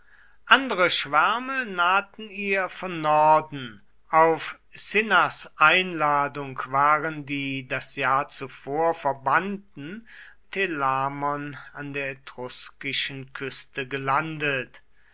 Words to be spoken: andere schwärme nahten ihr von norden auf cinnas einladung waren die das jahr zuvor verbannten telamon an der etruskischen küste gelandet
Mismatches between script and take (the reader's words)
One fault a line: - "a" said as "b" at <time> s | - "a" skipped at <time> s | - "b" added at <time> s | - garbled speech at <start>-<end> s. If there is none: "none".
none